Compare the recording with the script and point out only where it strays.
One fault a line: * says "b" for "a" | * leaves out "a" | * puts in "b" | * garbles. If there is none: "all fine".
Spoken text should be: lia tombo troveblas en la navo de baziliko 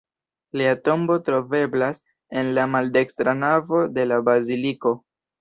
* puts in "maldekstra"
* puts in "la"